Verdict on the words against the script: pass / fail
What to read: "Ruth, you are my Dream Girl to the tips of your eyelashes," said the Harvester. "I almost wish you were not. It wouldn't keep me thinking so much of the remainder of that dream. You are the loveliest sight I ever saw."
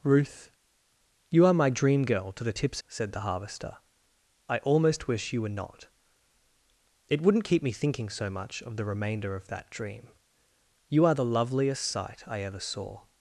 fail